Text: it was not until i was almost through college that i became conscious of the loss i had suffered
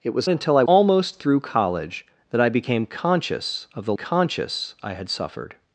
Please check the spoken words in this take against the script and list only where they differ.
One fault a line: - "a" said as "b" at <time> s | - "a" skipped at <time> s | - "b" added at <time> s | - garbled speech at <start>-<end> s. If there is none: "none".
- "not" skipped at 0.3 s
- "was" skipped at 0.6 s
- "loss" said as "conscious" at 3.9 s